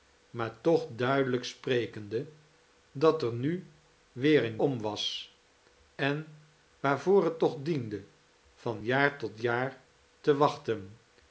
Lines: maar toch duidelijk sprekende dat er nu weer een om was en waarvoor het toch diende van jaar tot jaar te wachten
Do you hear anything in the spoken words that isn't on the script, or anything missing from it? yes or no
no